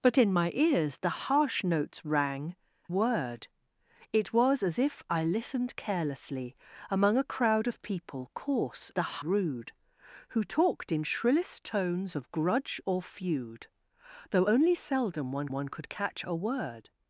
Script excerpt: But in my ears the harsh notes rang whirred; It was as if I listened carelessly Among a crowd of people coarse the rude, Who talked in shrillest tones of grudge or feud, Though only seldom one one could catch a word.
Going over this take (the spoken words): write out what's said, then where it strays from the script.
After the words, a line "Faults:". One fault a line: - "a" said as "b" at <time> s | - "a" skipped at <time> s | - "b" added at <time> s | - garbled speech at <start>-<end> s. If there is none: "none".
But in my ears the harsh notes rang whirred; It was as if I listened carelessly Among a crowd of people coarse the rude, Who talked in shrillest tones of grudge or feud, Though only seldom one one could catch a word.
Faults:
none